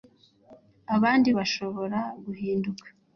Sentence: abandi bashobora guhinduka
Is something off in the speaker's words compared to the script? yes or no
no